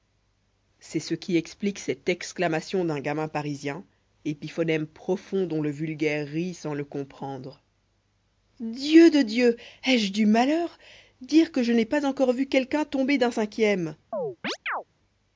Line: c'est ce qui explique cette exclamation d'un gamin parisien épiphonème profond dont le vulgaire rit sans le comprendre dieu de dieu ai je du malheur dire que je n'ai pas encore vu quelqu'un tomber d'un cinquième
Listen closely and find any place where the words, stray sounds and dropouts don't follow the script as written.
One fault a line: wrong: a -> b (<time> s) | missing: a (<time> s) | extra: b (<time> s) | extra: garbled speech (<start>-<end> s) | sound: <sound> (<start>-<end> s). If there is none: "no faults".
sound: chirp (14.1-14.8 s)